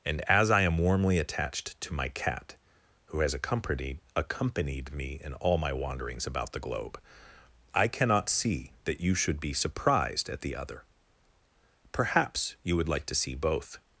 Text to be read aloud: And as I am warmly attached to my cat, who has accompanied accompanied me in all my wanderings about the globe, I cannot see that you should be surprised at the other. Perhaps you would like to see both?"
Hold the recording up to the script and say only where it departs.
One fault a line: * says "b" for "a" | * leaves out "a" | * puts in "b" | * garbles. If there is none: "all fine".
all fine